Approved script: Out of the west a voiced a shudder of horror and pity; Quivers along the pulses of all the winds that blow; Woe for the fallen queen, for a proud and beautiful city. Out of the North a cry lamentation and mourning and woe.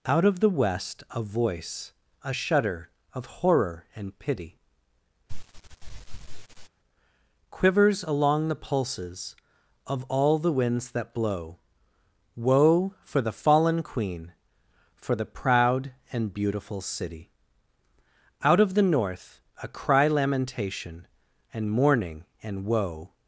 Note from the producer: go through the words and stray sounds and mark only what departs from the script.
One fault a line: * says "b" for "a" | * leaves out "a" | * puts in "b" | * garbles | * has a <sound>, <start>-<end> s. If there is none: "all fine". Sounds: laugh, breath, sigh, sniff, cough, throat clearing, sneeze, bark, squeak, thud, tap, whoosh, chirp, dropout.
* says "voice" for "voiced"
* has a sniff, 5.3-6.7 s
* says "the" for "a"